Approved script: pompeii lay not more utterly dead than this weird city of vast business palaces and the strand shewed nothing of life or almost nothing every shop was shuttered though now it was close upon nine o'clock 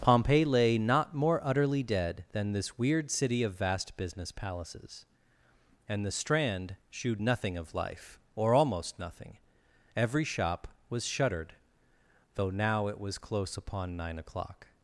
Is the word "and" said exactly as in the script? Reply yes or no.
yes